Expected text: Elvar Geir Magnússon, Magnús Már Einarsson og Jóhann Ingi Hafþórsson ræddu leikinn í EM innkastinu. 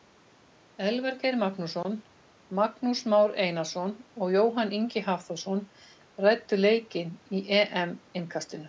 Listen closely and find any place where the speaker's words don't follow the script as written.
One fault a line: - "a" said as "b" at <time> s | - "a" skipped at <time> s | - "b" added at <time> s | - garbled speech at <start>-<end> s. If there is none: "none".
none